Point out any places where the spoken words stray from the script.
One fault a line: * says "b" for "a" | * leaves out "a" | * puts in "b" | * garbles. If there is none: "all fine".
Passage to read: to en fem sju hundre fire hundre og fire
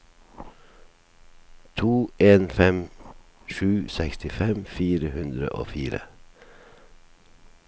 * says "sekstifem" for "hundre"